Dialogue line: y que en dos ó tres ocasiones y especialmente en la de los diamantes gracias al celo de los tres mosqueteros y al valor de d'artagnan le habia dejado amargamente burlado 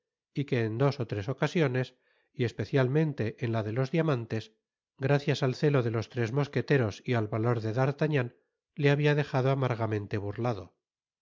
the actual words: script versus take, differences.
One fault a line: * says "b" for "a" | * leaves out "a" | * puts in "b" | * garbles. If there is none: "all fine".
all fine